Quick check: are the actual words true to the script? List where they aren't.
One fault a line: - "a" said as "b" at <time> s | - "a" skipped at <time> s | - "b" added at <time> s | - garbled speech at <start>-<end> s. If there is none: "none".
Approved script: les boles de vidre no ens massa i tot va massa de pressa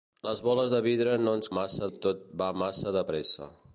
none